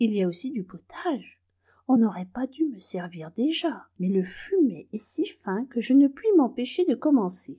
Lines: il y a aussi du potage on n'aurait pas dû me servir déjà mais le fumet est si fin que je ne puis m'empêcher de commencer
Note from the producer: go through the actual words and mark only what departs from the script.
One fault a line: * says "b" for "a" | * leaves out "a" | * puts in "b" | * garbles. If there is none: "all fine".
all fine